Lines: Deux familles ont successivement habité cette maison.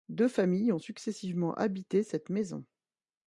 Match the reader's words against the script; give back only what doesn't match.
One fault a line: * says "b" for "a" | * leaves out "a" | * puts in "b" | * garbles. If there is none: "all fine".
all fine